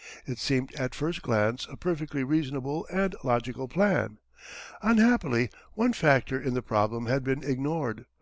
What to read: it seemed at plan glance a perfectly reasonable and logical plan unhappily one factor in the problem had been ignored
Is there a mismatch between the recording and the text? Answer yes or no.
yes